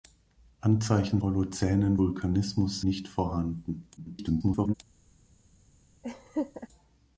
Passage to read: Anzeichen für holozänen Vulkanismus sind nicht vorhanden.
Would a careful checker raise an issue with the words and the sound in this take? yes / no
yes